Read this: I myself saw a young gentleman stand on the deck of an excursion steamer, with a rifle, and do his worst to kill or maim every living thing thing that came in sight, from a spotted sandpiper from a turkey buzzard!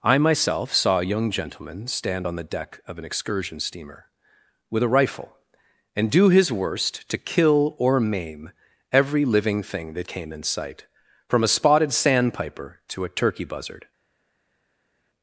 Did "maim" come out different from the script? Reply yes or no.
no